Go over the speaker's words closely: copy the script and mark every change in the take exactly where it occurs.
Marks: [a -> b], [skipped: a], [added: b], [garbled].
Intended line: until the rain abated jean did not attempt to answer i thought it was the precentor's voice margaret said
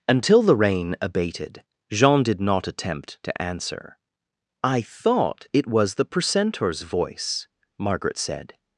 until the rain abated jean did not attempt to answer i thought it was the precentor's voice margaret said